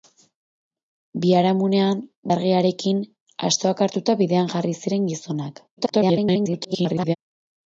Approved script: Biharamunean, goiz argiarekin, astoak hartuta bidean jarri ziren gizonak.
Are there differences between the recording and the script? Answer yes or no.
yes